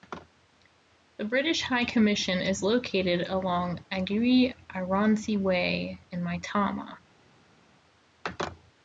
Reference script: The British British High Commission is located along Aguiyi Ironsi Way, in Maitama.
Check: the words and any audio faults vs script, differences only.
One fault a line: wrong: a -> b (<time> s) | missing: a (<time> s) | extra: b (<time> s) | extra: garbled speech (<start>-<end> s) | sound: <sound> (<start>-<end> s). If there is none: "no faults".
missing: British (1.6 s)